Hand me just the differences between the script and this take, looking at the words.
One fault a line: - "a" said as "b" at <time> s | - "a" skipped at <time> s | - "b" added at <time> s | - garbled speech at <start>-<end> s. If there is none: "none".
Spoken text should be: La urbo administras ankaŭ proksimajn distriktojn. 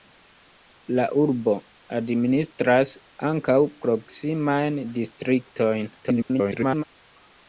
- garbled speech at 6.0-6.8 s